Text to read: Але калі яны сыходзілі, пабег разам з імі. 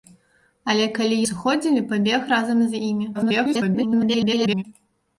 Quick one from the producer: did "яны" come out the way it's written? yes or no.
no